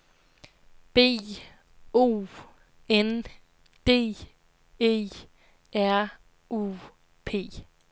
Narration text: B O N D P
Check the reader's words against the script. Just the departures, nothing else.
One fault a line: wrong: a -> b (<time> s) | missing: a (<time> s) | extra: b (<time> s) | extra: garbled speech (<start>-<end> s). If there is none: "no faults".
extra: E R U (4.8 s)